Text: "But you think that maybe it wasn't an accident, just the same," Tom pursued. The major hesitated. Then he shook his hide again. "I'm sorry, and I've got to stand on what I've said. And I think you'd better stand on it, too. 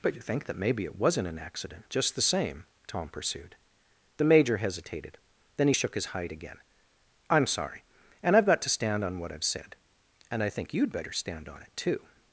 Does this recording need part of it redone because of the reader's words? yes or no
no